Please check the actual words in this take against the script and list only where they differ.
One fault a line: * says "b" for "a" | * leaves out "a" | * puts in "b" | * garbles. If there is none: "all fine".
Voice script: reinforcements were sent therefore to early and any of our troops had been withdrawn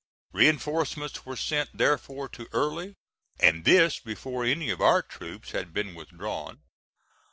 * puts in "this before"